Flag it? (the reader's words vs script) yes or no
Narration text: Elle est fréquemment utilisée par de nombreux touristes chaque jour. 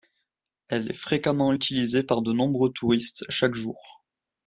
no